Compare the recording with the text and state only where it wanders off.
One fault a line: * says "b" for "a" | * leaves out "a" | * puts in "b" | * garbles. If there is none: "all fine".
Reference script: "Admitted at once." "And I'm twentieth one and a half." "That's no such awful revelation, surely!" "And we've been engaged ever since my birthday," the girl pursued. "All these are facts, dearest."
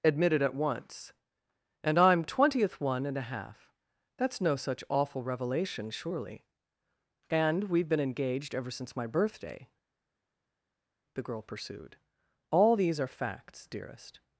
all fine